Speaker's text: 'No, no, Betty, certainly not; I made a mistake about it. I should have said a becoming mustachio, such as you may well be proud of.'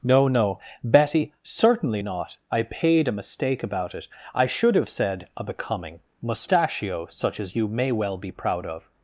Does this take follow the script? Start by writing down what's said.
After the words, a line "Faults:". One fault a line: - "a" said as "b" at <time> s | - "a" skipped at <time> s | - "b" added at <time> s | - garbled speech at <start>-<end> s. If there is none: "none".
'No, no, Betty, certainly not; I paid a mistake about it. I should have said a becoming mustachio, such as you may well be proud of.'
Faults:
- "made" said as "paid" at 2.6 s